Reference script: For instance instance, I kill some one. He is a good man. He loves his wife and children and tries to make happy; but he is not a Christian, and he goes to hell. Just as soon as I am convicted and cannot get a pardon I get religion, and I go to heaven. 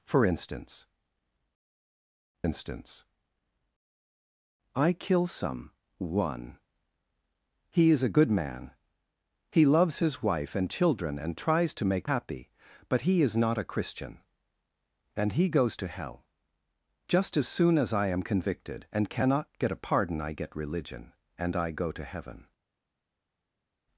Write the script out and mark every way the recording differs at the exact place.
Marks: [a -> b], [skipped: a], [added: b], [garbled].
For instance instance, I kill some one. He is a good man. He loves his wife and children and tries to make happy; but he is not a Christian, and he goes to hell. Just as soon as I am convicted and cannot get a pardon I get religion, and I go to heaven.